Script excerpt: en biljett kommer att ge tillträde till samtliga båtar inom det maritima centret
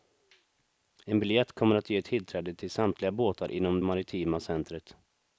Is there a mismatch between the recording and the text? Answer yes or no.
yes